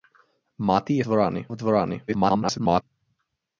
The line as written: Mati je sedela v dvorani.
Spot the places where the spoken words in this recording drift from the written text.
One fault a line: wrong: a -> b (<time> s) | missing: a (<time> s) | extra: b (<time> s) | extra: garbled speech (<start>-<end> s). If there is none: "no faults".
wrong: sedela -> dvorani (1.0 s)
extra: garbled speech (2.1-2.8 s)